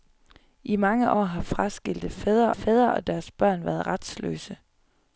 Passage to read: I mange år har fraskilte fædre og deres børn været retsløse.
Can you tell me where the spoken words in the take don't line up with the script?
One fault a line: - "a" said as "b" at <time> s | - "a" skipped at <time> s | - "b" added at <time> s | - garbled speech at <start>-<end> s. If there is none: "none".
- "fædre" added at 2.5 s